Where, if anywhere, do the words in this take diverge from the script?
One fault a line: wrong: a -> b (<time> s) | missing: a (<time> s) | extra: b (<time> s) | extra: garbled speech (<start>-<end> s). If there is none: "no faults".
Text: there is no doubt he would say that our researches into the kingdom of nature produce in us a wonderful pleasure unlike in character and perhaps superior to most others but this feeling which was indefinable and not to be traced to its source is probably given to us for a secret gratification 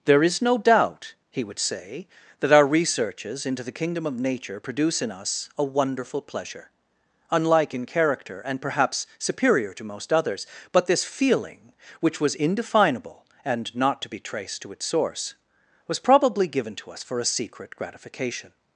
wrong: is -> was (15.9 s)